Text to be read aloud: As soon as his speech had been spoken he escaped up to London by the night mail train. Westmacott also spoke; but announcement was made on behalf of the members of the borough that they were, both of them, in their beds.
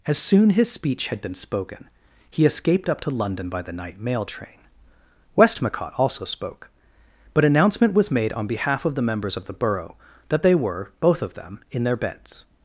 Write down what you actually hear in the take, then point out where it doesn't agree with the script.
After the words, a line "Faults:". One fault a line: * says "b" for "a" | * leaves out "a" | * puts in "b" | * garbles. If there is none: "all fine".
As soon his speech had been spoken he escaped up to London by the night mail train. Westmacott also spoke; but announcement was made on behalf of the members of the borough that they were, both of them, in their beds.
Faults:
* leaves out "as"